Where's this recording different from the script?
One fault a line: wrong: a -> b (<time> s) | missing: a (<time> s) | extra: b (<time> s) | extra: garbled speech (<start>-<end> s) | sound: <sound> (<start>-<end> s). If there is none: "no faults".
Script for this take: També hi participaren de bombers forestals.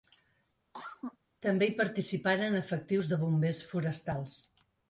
sound: cough (0.7-1.2 s)
extra: efectius (2.6 s)